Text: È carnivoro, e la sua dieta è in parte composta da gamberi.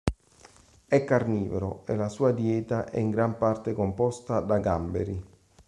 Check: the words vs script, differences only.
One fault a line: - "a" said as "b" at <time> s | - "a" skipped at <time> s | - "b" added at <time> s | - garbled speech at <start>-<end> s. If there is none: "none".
- "gran" added at 3.1 s